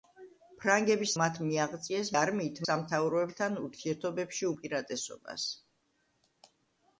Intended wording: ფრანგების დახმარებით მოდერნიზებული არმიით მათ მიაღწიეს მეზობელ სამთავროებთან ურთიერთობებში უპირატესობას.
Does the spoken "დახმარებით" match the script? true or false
false